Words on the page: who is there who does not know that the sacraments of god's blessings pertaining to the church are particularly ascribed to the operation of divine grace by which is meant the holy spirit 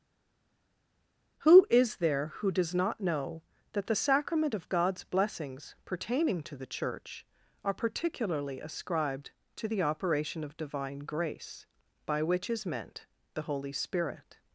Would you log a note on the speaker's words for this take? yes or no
yes